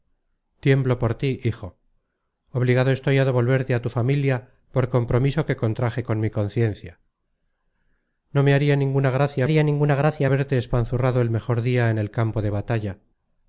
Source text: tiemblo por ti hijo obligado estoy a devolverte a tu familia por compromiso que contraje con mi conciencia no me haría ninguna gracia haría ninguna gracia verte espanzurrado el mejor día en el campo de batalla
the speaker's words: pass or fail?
pass